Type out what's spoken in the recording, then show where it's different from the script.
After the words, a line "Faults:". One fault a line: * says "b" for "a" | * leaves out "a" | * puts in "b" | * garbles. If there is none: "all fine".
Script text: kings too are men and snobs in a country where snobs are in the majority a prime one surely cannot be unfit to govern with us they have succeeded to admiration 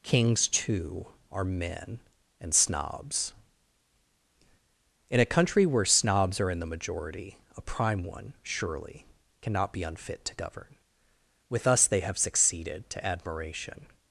kings too are men and snobs in a country where snobs are in the majority a prime one surely cannot be unfit to govern with us they have succeeded to admiration
Faults:
all fine